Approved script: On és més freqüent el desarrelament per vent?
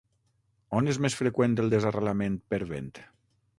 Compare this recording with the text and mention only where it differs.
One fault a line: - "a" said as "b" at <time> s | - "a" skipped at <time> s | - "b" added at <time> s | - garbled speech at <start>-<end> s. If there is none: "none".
none